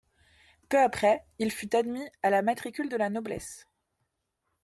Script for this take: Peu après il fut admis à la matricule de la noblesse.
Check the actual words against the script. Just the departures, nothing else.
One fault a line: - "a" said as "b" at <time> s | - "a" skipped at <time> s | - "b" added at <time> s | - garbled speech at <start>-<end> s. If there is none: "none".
none